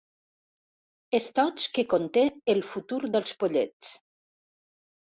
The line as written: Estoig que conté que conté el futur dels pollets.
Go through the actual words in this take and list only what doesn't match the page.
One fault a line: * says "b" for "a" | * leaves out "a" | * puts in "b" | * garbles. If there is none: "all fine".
* leaves out "que conté"